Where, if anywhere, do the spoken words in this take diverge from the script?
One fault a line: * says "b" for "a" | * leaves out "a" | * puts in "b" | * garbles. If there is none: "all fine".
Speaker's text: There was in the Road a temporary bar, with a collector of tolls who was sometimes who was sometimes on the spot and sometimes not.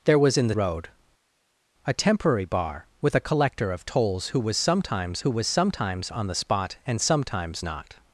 all fine